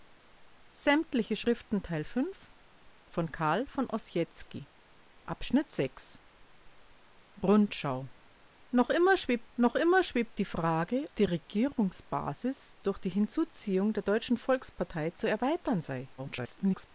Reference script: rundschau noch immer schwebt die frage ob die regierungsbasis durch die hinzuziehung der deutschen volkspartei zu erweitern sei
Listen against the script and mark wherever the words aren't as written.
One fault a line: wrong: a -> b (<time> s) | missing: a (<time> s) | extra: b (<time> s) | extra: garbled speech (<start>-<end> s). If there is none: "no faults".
extra: noch immer schwebt (9.6 s)
missing: ob (11.1 s)
extra: garbled speech (16.2-16.9 s)